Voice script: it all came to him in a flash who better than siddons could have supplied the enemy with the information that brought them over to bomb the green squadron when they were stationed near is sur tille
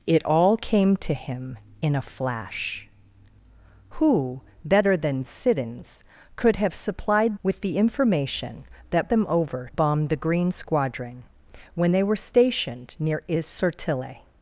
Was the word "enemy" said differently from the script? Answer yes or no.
yes